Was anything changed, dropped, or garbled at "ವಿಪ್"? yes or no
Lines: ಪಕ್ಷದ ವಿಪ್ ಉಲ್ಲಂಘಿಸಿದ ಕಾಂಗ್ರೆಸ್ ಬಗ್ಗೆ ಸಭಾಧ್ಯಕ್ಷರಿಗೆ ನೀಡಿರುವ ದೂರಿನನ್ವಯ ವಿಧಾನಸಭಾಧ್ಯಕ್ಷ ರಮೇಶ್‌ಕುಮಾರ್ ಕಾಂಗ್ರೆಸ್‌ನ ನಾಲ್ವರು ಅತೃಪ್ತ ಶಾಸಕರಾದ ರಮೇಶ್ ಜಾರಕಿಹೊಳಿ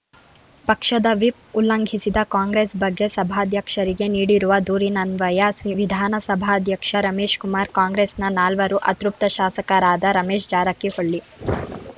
no